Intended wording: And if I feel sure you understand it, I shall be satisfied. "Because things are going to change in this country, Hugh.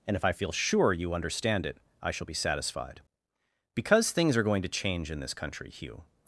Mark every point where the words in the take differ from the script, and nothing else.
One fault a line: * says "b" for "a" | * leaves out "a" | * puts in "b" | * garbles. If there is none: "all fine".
all fine